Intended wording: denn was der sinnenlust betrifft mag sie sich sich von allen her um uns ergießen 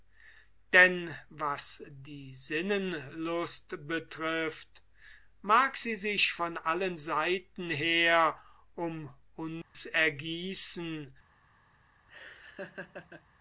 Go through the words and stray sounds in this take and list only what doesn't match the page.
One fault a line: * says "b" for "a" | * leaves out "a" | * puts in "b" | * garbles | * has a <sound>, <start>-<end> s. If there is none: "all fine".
* says "die" for "der"
* leaves out "sich"
* puts in "seiten"
* has a dropout, 9.6-9.7 s
* has a laugh, 12.1-13.3 s